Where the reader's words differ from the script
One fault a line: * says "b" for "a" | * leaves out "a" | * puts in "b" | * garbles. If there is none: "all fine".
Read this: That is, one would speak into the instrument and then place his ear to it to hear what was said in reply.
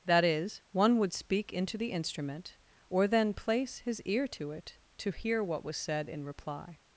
* says "or" for "and"